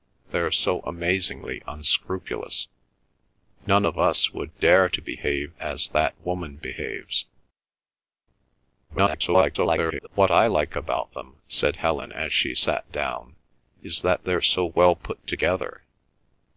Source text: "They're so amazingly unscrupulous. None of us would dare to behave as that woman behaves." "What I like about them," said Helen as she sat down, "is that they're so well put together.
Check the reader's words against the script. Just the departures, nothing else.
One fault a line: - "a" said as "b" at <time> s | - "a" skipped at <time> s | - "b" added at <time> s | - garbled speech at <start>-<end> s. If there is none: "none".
- garbled speech at 8.9-10.1 s